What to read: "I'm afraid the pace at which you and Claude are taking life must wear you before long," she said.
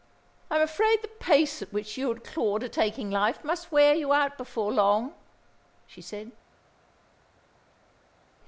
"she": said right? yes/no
yes